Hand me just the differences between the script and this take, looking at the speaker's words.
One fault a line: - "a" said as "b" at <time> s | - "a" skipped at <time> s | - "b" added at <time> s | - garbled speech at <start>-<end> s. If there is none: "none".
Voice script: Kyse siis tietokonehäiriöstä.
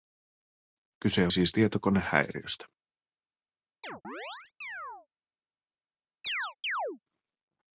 none